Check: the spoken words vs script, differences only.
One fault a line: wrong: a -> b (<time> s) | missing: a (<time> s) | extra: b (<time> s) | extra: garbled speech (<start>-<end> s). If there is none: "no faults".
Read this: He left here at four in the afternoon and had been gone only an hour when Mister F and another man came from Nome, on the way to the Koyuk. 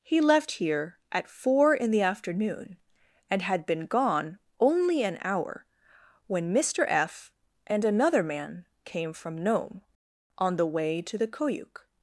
no faults